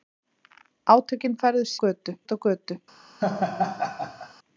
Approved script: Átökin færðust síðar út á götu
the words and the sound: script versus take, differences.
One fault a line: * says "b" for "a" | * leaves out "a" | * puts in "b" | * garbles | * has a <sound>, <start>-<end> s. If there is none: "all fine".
* says "götu" for "síðar"
* has a laugh, 3.2-4.3 s